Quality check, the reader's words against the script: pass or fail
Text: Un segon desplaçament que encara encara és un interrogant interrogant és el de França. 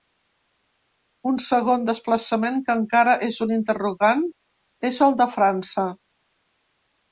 fail